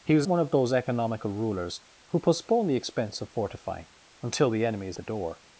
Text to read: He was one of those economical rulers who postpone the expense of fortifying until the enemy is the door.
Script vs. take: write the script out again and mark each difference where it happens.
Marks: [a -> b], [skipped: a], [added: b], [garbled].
He was one of those economical rulers who postpone the expense of fortifying until the enemy is the door.